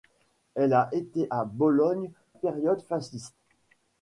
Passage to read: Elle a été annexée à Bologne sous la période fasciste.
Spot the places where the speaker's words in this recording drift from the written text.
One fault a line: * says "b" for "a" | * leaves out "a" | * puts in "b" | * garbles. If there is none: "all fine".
* leaves out "annexée"
* leaves out "sous la"